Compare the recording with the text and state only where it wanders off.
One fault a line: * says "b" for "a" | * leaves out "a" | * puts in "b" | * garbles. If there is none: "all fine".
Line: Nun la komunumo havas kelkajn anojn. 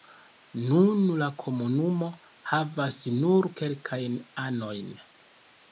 * puts in "nur"